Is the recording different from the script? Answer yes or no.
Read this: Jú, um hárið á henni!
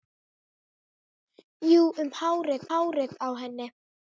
yes